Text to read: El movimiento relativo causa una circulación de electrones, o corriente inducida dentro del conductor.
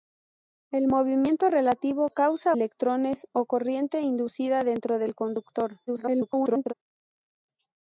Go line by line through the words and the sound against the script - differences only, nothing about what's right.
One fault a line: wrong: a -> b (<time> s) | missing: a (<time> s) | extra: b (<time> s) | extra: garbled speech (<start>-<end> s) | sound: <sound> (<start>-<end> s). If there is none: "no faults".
missing: una circulación de (2.5 s)
extra: garbled speech (5.9-6.7 s)